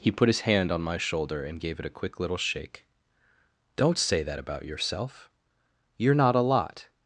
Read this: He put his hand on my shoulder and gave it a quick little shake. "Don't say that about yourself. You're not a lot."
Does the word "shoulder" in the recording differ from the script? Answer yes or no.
no